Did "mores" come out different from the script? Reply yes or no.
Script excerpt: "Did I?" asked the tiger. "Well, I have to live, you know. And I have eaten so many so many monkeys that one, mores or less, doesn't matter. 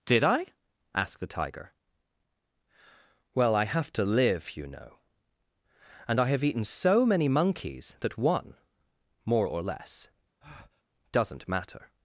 yes